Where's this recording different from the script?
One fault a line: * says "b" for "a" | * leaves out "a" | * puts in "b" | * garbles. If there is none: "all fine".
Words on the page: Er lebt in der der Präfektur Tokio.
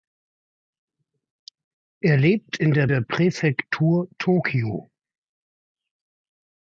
all fine